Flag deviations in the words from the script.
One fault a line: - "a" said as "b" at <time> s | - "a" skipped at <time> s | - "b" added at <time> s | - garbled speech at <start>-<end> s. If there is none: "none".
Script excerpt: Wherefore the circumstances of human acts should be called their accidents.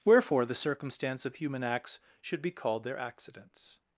- "circumstances" said as "circumstance" at 0.6 s